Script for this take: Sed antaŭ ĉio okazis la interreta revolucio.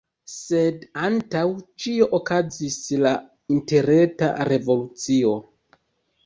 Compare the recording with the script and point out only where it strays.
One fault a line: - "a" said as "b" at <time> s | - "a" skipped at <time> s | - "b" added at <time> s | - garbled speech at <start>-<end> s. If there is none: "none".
none